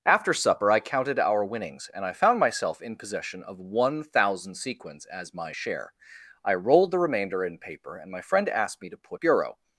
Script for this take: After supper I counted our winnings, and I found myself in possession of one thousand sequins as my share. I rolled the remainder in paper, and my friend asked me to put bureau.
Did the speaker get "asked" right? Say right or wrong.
right